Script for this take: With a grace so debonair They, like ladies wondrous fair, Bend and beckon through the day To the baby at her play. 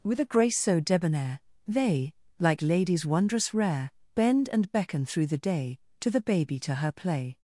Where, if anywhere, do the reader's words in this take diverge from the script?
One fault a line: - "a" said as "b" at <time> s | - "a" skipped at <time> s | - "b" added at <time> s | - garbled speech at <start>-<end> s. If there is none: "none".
- "fair" said as "rare" at 3.5 s
- "at" said as "to" at 6.6 s